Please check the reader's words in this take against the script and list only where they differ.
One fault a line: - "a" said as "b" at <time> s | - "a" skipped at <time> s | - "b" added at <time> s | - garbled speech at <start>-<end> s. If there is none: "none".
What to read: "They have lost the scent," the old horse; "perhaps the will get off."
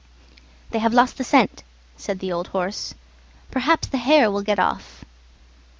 - "said" added at 2.0 s
- "hare" added at 4.0 s